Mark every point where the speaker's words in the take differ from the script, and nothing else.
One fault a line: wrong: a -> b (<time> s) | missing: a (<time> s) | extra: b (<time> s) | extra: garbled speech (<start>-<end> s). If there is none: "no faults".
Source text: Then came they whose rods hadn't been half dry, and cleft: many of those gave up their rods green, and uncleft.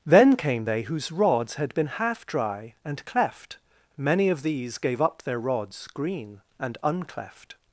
wrong: hadn't -> had (1.5 s)
wrong: those -> these (4.4 s)